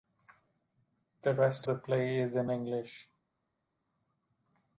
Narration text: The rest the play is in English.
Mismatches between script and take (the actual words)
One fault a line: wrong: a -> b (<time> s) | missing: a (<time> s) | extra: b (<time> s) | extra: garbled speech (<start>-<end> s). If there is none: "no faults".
no faults